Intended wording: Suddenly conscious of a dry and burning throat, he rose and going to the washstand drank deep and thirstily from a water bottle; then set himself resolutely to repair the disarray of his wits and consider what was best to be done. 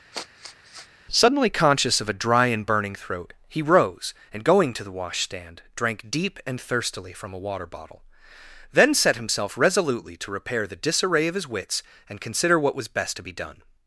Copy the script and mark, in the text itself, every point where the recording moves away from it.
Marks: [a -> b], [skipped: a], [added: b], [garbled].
Suddenly conscious of a dry and burning throat, he rose and going to the washstand drank deep and thirstily from a water bottle; then set himself resolutely to repair the disarray of his wits and consider what was best to be done.